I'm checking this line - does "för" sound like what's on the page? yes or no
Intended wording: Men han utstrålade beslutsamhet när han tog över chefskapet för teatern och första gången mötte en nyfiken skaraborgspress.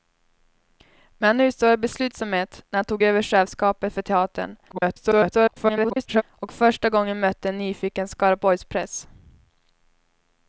yes